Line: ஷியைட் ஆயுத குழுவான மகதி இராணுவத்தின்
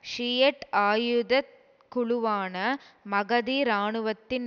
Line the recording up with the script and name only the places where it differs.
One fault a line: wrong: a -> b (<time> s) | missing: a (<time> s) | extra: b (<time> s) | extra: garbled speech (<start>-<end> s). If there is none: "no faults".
no faults